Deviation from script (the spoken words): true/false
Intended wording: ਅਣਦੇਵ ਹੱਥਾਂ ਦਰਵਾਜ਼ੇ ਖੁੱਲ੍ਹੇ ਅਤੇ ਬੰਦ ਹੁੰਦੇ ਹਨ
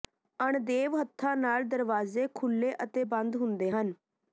true